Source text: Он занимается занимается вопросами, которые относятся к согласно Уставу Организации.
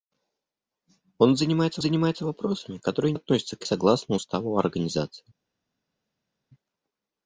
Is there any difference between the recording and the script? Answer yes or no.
no